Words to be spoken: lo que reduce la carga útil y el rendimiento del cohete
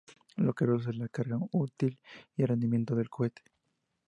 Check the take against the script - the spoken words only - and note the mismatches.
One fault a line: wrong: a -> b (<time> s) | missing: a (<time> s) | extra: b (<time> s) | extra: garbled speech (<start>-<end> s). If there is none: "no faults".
no faults